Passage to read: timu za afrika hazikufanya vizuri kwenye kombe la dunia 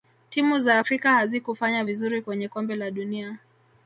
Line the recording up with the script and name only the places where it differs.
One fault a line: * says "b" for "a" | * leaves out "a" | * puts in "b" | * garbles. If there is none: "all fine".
all fine